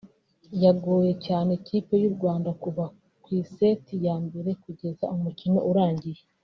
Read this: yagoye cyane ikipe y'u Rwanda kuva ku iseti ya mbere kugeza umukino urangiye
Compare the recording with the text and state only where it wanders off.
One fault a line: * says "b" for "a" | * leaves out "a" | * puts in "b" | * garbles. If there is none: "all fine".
all fine